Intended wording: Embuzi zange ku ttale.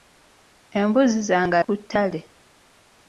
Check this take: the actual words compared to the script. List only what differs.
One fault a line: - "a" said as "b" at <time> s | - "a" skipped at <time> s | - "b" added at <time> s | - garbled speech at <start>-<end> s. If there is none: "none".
none